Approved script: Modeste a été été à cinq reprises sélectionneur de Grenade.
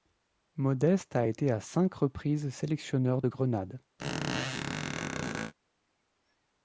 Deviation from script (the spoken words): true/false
true